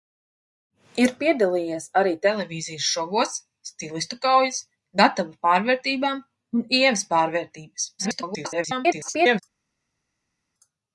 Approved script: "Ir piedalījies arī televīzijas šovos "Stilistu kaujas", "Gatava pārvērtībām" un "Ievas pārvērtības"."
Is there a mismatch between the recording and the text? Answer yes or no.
yes